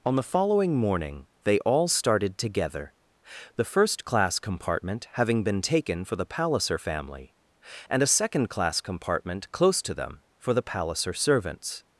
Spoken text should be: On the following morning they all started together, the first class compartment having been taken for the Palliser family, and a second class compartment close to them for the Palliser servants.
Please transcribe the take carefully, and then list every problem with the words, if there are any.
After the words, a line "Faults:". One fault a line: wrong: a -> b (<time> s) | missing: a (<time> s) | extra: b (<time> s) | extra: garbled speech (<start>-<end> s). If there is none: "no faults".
On the following morning they all started together, the first class compartment having been taken for the Palliser family, and a second class compartment close to them for the Palliser servants.
Faults:
no faults